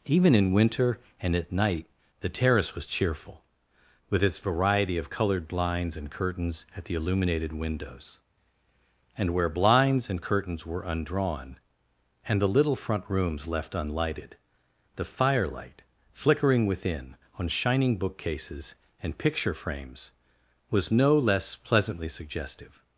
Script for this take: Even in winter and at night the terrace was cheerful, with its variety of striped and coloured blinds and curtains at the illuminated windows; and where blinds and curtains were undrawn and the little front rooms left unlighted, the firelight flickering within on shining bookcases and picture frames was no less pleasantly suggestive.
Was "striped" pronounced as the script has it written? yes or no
no